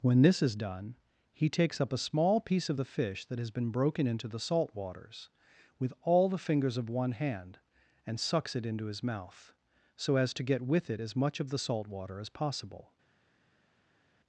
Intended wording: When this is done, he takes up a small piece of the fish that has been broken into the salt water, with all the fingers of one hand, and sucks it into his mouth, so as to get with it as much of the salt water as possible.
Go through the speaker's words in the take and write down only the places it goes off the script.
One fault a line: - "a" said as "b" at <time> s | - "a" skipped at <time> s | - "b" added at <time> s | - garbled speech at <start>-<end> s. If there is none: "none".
- "water" said as "waters" at 4.7 s